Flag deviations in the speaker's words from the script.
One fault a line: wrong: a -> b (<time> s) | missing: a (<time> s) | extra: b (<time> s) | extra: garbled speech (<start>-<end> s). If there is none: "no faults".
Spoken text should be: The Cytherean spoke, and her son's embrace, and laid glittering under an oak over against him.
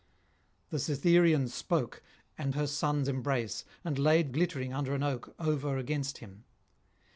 no faults